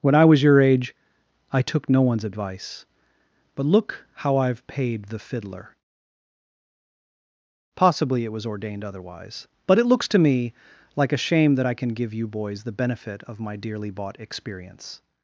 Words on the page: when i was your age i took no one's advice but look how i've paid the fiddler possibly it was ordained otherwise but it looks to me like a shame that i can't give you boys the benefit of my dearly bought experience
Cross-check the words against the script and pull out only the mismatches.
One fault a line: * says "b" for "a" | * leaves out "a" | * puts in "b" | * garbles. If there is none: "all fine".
* says "can" for "can't"